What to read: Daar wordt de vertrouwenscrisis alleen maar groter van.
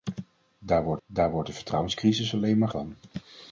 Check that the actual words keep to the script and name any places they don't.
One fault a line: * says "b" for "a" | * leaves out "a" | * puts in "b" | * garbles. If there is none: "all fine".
* puts in "daar wordt"
* leaves out "groter"